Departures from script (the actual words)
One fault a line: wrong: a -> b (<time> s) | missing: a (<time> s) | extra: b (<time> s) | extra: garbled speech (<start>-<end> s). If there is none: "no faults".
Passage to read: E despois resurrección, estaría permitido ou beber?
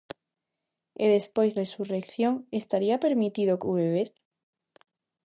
no faults